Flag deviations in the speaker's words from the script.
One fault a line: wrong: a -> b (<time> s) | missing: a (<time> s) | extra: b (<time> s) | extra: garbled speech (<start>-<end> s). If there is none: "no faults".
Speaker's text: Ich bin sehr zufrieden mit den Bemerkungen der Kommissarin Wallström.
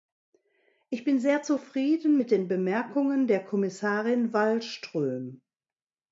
no faults